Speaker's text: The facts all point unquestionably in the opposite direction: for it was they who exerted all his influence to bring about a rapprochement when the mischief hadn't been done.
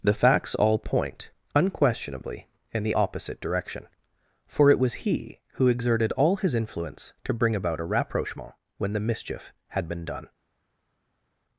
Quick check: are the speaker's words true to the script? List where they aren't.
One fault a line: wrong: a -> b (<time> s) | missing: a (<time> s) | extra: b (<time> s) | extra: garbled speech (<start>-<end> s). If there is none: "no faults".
wrong: they -> he (5.0 s)
wrong: hadn't -> had (9.7 s)